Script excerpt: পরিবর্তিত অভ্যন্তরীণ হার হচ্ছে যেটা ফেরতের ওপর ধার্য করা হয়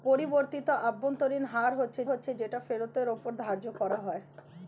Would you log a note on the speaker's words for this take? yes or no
yes